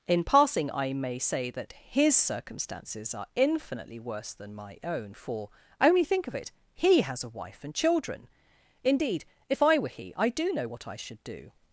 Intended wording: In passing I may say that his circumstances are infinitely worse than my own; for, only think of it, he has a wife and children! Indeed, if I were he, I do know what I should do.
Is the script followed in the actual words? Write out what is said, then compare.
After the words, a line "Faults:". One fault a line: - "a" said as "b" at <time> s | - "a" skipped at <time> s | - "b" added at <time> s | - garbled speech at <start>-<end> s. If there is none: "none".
In passing I may say that his circumstances are infinitely worse than my own; for, only think of it, he has a wife and children! Indeed, if I were he, I do know what I should do.
Faults:
none